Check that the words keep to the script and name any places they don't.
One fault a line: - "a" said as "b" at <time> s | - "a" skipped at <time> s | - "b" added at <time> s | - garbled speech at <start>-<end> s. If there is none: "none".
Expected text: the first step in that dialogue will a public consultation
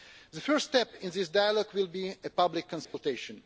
- "that" said as "this" at 1.1 s
- "be" added at 1.9 s